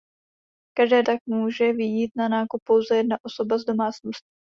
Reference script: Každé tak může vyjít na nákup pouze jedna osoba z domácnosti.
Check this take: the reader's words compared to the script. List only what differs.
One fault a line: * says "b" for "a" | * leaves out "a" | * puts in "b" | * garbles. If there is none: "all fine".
all fine